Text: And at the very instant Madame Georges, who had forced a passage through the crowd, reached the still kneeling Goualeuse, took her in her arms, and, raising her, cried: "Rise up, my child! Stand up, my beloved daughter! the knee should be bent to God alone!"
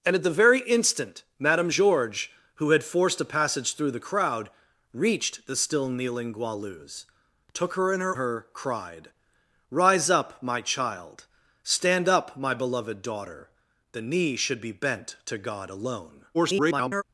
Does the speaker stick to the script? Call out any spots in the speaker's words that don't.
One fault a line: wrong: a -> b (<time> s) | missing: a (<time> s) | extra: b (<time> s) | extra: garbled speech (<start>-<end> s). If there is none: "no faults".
missing: arms and raising (8.2 s)
extra: garbled speech (16.3-17.0 s)